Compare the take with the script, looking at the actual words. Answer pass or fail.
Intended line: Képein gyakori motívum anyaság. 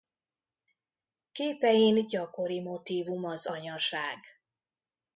fail